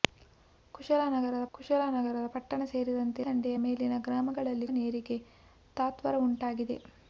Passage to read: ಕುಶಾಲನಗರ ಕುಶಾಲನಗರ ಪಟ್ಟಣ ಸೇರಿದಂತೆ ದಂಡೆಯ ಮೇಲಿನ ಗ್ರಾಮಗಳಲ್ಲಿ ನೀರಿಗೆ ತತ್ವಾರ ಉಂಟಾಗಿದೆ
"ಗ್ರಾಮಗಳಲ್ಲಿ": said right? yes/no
yes